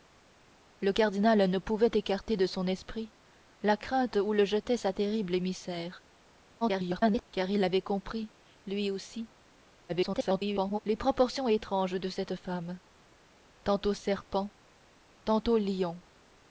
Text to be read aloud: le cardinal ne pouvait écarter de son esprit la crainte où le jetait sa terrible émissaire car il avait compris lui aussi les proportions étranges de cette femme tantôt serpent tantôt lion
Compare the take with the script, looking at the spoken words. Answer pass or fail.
fail